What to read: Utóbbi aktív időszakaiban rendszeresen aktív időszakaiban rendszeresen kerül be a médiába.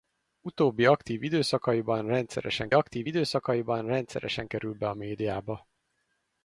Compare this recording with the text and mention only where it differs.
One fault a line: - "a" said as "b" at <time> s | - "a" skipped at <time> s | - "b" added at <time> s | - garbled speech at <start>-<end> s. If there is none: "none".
none